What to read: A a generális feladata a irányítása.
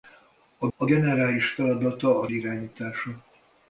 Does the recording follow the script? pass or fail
pass